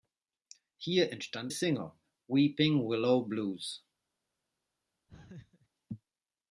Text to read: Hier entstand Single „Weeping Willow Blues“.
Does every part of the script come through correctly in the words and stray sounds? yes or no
no